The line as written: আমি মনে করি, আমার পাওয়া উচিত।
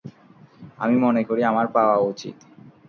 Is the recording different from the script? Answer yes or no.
no